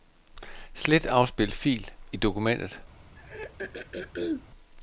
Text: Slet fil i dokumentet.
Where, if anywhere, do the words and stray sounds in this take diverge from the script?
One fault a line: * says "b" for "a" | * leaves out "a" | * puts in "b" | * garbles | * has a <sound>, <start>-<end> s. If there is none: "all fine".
* puts in "afspil"
* has a throat clearing, 3.2-4.5 s